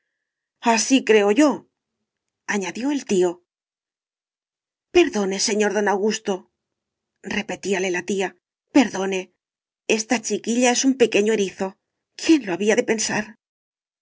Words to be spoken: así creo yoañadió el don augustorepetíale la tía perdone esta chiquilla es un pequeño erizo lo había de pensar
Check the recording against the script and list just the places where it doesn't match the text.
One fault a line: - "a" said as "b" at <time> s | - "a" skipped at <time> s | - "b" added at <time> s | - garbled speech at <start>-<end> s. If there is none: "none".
- "tío perdone señor" added at 3.1 s
- "quién" added at 12.2 s